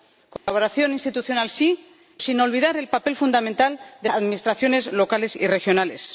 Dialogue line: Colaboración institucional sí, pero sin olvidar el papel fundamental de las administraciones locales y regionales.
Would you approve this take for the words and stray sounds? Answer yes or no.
no